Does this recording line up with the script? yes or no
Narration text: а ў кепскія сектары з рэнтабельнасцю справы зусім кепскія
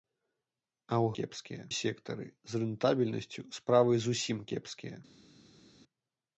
yes